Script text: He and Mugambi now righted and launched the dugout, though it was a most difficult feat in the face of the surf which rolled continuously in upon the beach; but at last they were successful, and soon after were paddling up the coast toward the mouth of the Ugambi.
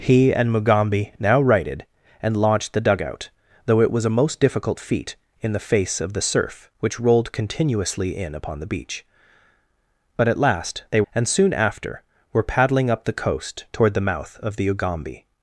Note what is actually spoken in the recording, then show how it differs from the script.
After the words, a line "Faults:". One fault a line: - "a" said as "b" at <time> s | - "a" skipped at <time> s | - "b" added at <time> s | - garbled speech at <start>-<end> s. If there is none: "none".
He and Mugambi now righted and launched the dugout, though it was a most difficult feat in the face of the surf which rolled continuously in upon the beach; but at last they and soon after were paddling up the coast toward the mouth of the Ugambi.
Faults:
- "were successful" skipped at 11.0 s